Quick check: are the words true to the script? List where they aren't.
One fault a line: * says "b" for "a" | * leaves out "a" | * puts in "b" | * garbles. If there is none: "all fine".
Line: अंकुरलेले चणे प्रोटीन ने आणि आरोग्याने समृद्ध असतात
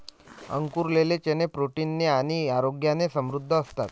all fine